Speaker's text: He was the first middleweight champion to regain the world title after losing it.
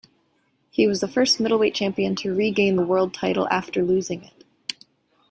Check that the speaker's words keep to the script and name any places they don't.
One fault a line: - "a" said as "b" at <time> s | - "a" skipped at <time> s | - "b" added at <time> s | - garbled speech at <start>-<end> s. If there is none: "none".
none